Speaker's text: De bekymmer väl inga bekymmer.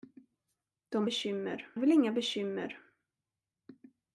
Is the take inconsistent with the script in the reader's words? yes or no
no